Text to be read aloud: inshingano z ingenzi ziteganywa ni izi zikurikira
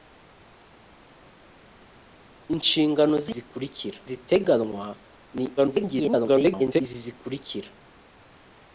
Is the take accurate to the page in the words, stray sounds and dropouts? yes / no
no